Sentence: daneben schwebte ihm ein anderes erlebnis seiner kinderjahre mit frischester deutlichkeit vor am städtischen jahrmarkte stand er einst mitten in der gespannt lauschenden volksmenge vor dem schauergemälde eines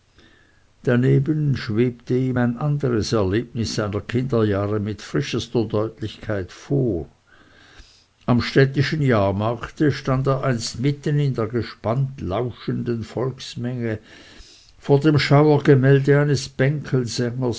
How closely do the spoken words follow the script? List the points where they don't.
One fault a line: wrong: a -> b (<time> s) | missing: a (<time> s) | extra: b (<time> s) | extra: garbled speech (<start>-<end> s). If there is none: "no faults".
no faults